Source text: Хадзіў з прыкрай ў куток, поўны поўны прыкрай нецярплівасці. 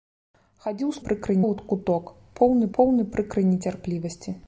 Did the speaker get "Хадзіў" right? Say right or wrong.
right